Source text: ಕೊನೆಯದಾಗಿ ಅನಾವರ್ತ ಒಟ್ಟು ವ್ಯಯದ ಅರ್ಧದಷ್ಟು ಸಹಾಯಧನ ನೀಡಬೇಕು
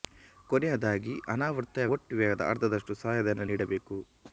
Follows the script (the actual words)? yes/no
yes